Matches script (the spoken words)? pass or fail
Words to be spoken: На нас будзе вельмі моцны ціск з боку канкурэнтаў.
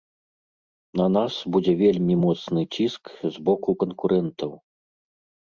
pass